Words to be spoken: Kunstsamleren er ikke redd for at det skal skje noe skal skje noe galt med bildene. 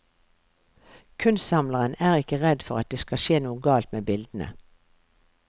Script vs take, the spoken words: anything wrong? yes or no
yes